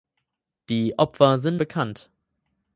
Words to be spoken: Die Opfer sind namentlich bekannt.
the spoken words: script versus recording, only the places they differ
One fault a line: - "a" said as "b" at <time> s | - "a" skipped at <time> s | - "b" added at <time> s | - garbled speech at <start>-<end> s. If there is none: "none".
- "namentlich" skipped at 1.6 s